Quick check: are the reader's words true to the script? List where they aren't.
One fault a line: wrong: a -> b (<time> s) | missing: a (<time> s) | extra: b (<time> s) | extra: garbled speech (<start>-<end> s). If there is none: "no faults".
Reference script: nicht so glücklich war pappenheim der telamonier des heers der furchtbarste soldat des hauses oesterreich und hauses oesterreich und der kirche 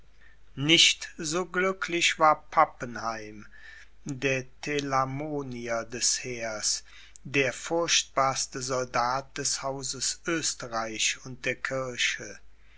missing: hauses oesterreich und (11.4 s)